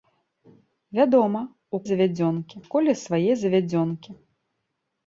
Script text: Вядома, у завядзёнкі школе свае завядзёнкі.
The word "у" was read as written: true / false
true